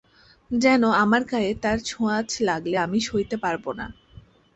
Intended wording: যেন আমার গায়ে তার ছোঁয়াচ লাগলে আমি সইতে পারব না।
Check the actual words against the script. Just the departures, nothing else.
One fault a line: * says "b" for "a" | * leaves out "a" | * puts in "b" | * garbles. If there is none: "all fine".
all fine